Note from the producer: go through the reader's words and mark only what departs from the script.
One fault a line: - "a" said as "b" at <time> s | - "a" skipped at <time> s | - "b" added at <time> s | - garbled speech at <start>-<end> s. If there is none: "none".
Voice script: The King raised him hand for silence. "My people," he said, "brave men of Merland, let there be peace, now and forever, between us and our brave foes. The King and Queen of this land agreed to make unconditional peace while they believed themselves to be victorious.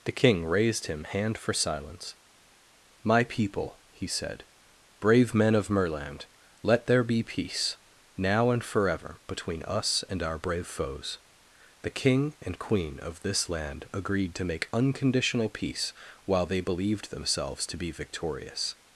none